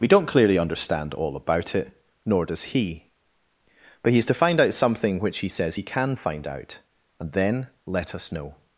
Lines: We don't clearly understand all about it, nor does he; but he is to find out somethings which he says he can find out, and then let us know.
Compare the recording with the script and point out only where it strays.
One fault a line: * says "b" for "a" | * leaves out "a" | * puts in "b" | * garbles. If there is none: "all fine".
* says "something" for "somethings"